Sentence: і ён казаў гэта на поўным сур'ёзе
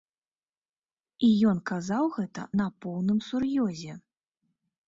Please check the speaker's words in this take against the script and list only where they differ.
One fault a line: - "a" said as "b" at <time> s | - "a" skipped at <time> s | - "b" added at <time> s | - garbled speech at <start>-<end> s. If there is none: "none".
none